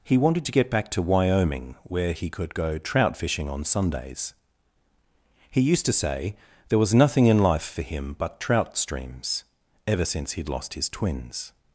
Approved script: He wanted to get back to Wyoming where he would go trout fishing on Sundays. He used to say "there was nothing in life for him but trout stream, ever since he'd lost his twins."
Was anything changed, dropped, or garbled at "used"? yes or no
no